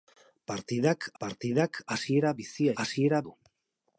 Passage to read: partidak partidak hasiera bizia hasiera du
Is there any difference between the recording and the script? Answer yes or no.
no